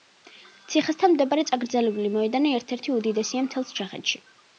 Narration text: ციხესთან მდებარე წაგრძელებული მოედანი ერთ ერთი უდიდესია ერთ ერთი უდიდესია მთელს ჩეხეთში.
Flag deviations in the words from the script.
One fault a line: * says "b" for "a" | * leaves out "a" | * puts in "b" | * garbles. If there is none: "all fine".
* leaves out "ერთ ერთი უდიდესია"